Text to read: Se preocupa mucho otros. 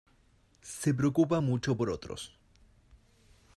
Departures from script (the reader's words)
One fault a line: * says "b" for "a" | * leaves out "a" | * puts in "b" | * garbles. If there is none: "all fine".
* puts in "por"